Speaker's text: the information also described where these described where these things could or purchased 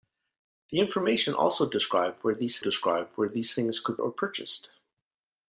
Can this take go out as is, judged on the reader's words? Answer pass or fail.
pass